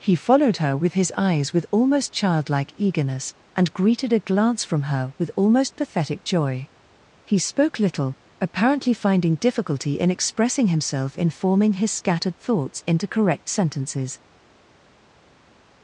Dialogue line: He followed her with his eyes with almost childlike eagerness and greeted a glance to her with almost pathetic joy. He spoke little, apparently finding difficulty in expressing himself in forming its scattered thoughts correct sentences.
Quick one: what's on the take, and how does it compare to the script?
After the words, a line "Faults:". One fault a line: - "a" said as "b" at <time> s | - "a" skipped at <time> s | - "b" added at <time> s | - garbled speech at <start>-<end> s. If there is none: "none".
He followed her with his eyes with almost childlike eagerness and greeted a glance from her with almost pathetic joy. He spoke little, apparently finding difficulty in expressing himself in forming his scattered thoughts into correct sentences.
Faults:
- "to" said as "from" at 4.6 s
- "its" said as "his" at 11.7 s
- "into" added at 12.9 s